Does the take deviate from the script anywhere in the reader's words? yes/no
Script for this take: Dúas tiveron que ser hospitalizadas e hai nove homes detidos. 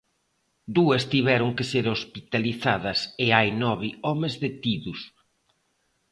no